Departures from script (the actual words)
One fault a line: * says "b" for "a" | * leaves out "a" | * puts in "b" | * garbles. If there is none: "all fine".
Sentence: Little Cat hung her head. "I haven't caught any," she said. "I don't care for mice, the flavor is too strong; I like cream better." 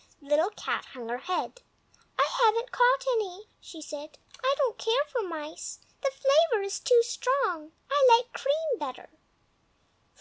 all fine